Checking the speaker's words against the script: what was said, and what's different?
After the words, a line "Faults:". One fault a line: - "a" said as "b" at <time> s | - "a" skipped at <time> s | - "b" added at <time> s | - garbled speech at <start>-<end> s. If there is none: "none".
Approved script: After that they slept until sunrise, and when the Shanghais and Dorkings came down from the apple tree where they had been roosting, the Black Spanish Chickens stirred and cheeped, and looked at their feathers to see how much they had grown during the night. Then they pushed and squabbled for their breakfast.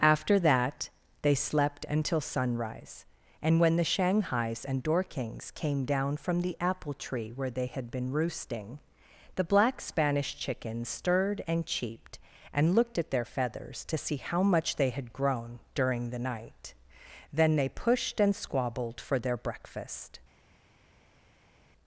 After that they slept until sunrise, and when the Shanghais and Dorkings came down from the apple tree where they had been roosting, the Black Spanish Chickens stirred and cheeped, and looked at their feathers to see how much they had grown during the night. Then they pushed and squabbled for their breakfast.
Faults:
none